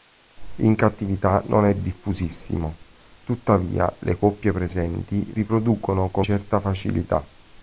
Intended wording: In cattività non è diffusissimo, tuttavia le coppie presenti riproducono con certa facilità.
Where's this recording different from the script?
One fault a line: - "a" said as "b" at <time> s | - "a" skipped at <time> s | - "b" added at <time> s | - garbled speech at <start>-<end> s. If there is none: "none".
none